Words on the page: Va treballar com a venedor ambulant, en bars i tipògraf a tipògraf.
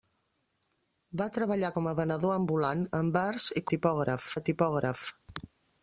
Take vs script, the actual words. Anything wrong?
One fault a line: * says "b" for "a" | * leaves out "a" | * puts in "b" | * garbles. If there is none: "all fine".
all fine